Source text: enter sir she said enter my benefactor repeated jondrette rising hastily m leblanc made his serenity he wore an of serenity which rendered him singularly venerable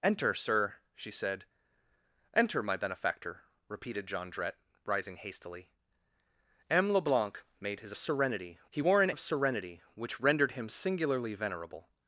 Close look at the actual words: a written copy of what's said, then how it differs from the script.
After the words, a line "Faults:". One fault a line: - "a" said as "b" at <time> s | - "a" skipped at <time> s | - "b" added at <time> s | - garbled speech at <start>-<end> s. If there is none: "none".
enter sir she said enter my benefactor repeated jondrette rising hastily m leblanc made his serenity he wore an of serenity which rendered him singularly venerable
Faults:
none